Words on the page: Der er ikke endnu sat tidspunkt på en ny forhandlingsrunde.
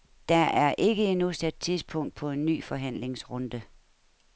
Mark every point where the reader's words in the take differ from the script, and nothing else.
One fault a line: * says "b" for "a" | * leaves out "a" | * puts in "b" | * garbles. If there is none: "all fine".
all fine